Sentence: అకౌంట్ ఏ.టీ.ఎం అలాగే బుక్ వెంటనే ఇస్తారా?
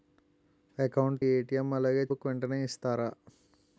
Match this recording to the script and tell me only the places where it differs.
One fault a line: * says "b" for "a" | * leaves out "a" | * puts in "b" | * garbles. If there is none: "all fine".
all fine